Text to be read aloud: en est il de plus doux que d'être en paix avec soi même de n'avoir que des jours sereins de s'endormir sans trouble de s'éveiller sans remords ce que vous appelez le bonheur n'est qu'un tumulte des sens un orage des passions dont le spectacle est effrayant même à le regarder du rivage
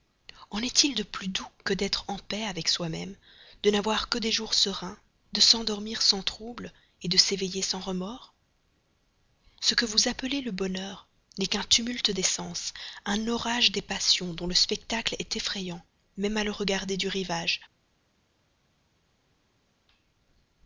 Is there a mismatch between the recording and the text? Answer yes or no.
no